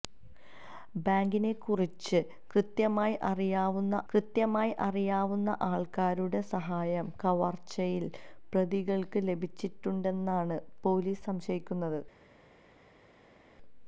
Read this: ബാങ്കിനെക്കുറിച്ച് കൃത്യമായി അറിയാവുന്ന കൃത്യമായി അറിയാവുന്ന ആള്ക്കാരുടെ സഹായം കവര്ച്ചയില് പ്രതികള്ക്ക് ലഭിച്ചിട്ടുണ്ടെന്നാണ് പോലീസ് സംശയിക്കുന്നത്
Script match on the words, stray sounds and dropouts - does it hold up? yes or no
yes